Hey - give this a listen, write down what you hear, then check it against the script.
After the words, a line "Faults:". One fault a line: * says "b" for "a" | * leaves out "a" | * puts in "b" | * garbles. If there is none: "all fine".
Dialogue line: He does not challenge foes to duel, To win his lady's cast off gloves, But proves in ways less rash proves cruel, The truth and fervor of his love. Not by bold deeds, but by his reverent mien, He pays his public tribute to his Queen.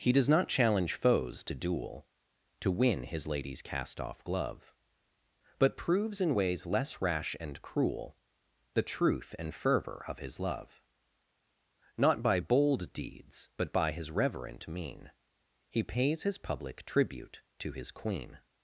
He does not challenge foes to duel, To win his lady's cast off glove, But proves in ways less rash and cruel, The truth and fervor of his love. Not by bold deeds, but by his reverent mien, He pays his public tribute to his Queen.
Faults:
* says "glove" for "gloves"
* says "and" for "proves"